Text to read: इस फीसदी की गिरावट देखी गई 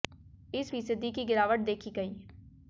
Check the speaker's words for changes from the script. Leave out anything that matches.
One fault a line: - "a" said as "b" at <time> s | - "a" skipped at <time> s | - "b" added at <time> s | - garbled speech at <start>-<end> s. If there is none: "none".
none